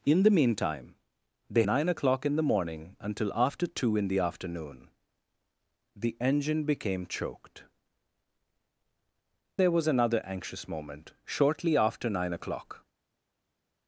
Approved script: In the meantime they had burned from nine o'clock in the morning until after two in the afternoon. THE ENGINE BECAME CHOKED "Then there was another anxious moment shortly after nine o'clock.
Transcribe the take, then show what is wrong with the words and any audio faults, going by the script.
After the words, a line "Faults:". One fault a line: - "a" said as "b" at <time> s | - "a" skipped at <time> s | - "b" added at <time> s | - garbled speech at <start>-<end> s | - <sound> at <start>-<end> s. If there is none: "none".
In the meantime they nine o'clock in the morning until after two in the afternoon. THE ENGINE BECAME CHOKED "There was another anxious moment shortly after nine o'clock.
Faults:
- "had burned from" skipped at 1.6 s
- "Then" skipped at 7.7 s